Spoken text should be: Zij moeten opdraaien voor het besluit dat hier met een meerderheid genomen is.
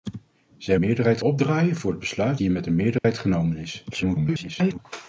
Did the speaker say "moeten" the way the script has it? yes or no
no